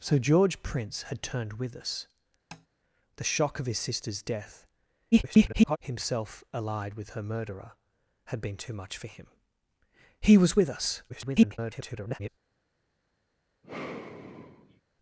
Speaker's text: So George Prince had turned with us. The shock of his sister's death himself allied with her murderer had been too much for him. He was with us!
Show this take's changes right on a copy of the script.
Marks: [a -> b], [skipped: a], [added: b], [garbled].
So George Prince had turned with us. The shock of his sister's death [garbled] himself allied with her murderer had been too much for him. He was with us! [garbled]